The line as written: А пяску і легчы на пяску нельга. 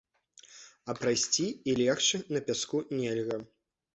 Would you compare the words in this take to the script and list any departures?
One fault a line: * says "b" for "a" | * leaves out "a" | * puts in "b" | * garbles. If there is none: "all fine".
* says "прайсці" for "пяску"